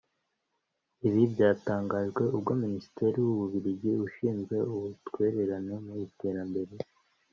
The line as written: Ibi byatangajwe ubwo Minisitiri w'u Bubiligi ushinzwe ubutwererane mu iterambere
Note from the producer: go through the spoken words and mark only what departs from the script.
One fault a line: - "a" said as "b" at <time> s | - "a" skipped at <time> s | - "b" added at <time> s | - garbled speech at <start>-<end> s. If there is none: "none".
none